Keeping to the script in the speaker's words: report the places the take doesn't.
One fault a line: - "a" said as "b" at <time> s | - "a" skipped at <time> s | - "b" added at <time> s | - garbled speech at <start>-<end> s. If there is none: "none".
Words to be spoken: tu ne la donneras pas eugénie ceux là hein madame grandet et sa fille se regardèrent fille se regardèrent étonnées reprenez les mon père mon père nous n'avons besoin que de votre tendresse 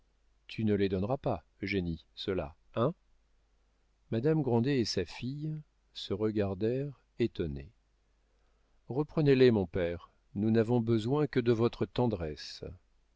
- "la" said as "les" at 0.7 s
- "fille se regardèrent" skipped at 7.0 s
- "mon père" skipped at 10.1 s